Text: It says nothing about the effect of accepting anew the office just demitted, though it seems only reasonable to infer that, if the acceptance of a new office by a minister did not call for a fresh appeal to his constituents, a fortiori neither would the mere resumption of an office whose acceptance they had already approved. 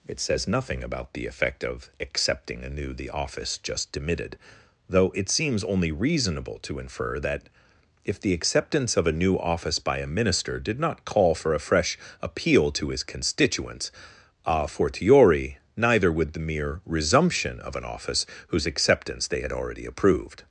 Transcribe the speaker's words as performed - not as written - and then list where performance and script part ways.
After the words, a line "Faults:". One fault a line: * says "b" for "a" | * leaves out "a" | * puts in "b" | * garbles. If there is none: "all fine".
It says nothing about the effect of accepting anew the office just demitted, though it seems only reasonable to infer that, if the acceptance of a new office by a minister did not call for a fresh appeal to his constituents, a fortiori neither would the mere resumption of an office whose acceptance they had already approved.
Faults:
all fine